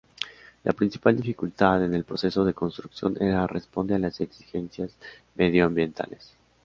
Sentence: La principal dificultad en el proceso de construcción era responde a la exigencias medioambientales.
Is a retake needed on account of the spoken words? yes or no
yes